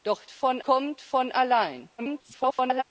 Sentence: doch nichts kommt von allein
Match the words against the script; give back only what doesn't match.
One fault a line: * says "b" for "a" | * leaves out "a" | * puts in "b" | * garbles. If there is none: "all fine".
* says "von" for "nichts"
* garbles